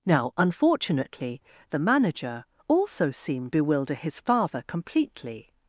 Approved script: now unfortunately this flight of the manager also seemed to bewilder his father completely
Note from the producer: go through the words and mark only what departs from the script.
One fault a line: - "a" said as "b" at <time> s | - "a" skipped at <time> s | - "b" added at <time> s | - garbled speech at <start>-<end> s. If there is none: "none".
- "this flight of" skipped at 1.4 s
- "to" skipped at 3.5 s